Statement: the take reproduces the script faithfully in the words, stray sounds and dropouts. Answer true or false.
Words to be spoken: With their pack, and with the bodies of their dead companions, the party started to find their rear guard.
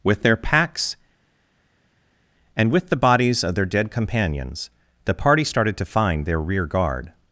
false